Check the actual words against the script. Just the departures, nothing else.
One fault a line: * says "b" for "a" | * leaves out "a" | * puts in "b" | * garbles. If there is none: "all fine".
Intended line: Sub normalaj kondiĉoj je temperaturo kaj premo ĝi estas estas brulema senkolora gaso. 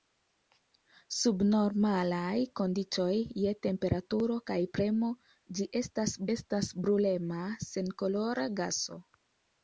all fine